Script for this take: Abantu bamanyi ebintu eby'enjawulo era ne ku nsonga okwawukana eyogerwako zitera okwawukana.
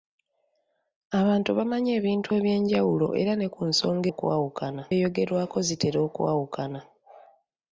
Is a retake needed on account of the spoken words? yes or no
no